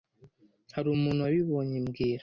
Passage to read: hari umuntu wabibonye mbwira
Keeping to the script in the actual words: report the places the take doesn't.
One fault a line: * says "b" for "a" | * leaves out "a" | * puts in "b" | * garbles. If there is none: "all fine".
all fine